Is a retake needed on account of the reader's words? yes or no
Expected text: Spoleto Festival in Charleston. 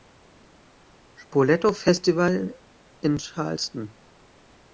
no